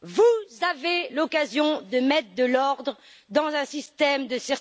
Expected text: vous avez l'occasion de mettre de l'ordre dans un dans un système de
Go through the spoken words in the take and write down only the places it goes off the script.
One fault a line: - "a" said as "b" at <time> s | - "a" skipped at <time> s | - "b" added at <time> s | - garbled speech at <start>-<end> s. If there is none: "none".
- "dans un" skipped at 3.6 s